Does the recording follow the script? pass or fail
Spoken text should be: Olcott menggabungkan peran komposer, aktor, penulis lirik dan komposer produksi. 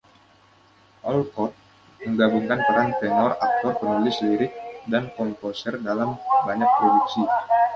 fail